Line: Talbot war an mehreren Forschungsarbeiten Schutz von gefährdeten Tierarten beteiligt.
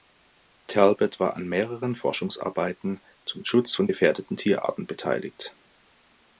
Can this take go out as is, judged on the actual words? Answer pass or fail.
fail